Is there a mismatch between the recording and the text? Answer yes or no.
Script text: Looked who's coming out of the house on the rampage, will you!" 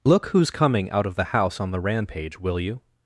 yes